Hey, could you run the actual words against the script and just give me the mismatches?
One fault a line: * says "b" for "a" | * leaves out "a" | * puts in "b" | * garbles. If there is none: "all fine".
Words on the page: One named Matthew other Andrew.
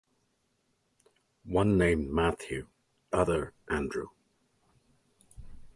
all fine